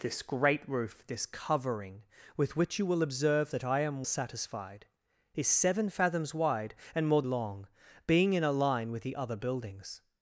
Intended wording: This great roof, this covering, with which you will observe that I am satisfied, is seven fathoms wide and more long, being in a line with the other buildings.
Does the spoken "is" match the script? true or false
true